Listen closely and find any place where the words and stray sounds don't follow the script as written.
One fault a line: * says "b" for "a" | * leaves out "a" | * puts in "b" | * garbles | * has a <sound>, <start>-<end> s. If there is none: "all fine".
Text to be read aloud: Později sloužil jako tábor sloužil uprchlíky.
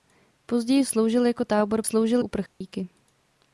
* has a dropout, 2.5-2.6 s